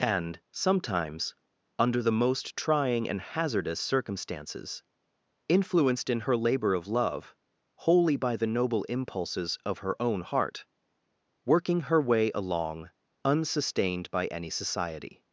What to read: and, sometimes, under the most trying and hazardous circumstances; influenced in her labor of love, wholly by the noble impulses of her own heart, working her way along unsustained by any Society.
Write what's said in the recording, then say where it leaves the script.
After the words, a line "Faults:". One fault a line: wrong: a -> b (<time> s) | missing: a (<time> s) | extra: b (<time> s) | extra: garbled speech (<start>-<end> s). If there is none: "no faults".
and, sometimes, under the most trying and hazardous circumstances; influenced in her labor of love, wholly by the noble impulses of her own heart, working her way along unsustained by any Society.
Faults:
no faults